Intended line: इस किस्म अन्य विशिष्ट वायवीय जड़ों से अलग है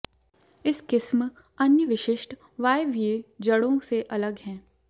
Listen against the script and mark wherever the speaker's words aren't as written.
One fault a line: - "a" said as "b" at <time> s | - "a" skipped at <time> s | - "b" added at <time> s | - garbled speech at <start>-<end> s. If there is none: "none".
none